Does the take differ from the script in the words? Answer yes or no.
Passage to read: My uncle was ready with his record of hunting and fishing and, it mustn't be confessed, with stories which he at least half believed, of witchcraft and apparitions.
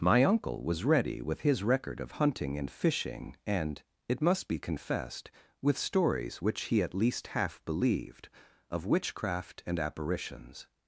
yes